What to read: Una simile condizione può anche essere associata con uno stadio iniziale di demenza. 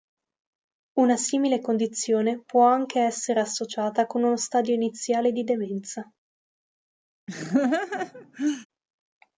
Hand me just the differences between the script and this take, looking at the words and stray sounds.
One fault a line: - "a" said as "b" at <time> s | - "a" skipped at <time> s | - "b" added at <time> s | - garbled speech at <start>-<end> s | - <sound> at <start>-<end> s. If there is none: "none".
- laugh at 7.3-8.7 s